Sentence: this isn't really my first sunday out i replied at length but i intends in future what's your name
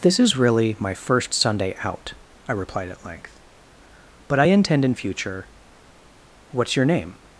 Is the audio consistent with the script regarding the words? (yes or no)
no